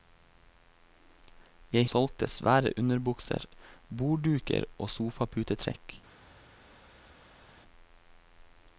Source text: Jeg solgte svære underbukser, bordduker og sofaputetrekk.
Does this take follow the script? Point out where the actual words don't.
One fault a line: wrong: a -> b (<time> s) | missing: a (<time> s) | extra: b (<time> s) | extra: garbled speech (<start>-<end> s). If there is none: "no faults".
no faults